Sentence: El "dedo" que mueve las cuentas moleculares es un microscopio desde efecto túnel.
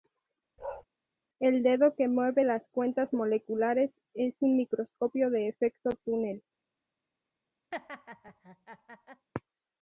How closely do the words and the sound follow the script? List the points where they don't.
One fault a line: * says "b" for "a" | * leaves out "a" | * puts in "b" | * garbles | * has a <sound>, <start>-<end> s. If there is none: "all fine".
* has a bark, 0.6-0.8 s
* says "de" for "desde"
* has a laugh, 7.7-9.3 s